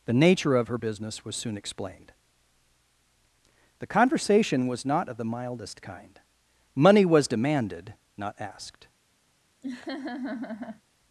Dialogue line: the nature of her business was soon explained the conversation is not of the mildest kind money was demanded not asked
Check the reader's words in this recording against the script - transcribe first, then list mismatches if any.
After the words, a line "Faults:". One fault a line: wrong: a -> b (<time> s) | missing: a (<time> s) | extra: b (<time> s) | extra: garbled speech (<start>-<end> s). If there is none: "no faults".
the nature of her business was soon explained the conversation was not of the mildest kind money was demanded not asked
Faults:
wrong: is -> was (4.7 s)